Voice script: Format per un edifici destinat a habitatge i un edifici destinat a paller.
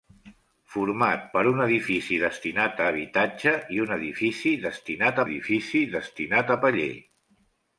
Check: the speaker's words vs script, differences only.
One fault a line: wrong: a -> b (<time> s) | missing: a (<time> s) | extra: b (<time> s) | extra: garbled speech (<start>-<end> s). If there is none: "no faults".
extra: edifici destinat (5.3 s)